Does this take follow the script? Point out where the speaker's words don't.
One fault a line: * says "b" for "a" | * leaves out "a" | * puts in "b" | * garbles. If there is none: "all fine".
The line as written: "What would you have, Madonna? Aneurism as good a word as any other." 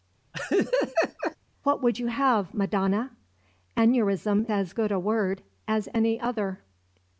all fine